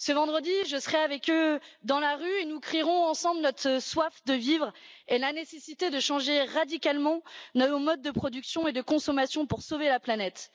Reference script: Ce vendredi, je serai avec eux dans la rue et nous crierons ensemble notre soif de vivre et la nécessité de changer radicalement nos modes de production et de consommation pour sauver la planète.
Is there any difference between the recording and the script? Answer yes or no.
no